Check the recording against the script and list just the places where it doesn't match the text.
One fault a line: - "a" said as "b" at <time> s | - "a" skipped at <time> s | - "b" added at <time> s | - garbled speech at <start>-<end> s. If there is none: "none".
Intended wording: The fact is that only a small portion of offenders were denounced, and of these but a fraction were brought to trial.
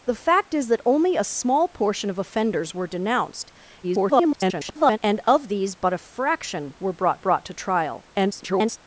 - garbled speech at 3.8-5.0 s
- "brought" added at 7.2 s
- garbled speech at 8.1-8.8 s